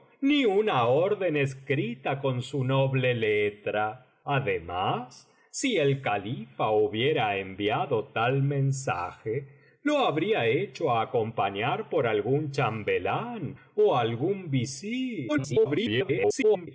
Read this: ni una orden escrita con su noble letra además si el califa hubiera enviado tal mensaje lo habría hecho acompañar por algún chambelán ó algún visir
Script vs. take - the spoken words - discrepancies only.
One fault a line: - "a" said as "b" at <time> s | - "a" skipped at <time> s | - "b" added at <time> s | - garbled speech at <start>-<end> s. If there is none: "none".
- garbled speech at 15.3-16.7 s